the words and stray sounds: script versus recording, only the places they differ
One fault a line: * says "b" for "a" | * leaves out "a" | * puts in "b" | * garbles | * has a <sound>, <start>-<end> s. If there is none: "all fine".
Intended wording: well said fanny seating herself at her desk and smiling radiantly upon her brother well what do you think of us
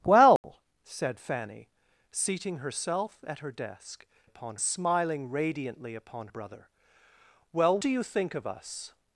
* has a dropout, 0.4-0.4 s
* says "upon" for "and"
* leaves out "her"
* leaves out "what"